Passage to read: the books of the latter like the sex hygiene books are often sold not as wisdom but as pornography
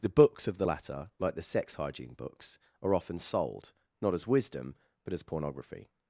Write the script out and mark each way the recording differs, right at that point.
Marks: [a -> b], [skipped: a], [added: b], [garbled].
the books of the latter like the sex hygiene books are often sold not as wisdom but as pornography